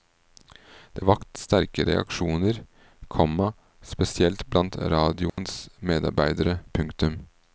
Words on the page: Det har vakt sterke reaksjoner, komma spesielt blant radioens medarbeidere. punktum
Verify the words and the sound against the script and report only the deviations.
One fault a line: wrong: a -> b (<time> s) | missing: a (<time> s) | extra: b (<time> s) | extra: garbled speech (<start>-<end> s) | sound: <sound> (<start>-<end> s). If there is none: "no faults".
missing: har (1.1 s)
sound: dropout (5.3-5.4 s)